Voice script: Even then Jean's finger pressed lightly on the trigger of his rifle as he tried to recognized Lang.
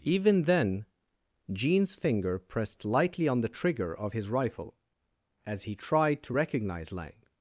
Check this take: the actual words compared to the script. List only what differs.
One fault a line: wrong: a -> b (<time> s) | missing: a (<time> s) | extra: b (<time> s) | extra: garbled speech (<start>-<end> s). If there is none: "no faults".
wrong: recognized -> recognize (6.3 s)